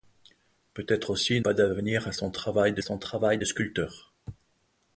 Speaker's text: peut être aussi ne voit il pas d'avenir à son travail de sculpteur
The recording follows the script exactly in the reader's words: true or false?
false